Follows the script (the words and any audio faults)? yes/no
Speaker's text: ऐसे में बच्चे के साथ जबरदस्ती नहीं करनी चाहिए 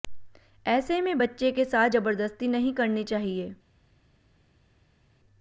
yes